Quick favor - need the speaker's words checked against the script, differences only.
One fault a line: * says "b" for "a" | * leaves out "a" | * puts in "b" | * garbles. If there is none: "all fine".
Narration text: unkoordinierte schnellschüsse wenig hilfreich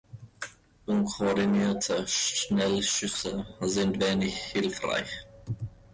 * puts in "sind"